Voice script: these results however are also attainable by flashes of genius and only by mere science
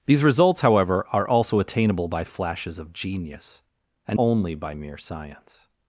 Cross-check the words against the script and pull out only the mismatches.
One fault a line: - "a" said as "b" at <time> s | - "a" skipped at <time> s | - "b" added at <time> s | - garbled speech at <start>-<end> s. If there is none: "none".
none